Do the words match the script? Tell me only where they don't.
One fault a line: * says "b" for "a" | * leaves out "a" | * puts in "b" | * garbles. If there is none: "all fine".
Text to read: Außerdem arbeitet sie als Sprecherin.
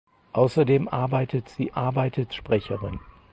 * says "arbeitet" for "als"